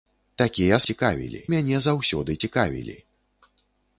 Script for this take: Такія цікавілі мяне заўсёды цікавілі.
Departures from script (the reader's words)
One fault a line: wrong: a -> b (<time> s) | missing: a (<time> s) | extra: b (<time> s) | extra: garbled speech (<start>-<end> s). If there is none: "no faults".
no faults